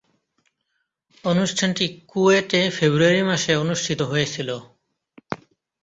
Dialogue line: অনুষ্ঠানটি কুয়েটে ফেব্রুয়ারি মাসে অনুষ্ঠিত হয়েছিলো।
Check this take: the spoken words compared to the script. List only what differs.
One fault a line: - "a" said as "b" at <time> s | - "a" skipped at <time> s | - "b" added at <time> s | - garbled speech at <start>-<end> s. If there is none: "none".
none